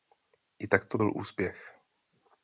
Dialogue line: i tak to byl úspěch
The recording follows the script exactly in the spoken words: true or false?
true